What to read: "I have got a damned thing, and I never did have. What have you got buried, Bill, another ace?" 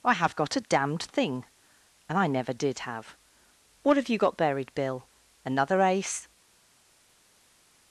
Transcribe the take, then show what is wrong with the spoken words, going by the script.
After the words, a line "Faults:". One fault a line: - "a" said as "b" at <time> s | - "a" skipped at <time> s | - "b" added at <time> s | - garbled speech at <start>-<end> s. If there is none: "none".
"I have got a damned thing, and I never did have. What have you got buried, Bill, another ace?"
Faults:
none